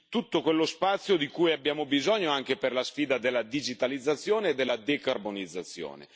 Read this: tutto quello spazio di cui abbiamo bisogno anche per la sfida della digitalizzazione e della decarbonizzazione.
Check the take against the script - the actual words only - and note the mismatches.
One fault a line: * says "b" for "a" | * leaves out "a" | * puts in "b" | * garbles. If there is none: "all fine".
all fine